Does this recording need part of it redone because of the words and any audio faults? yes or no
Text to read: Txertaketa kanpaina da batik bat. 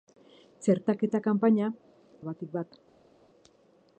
no